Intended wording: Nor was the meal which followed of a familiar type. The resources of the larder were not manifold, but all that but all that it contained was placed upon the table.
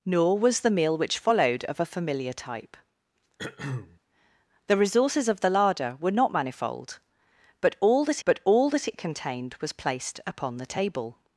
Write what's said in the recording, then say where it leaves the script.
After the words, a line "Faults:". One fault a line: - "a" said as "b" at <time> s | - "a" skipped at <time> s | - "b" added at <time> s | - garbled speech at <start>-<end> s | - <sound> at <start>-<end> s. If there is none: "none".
Nor was the meal which followed of a familiar type. The resources of the larder were not manifold, but all that but all that it contained was placed upon the table.
Faults:
- throat clearing at 3.4-4.0 s